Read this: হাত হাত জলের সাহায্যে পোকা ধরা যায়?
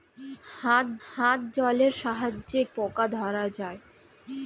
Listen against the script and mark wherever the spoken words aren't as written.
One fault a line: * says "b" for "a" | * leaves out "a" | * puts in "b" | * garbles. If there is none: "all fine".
all fine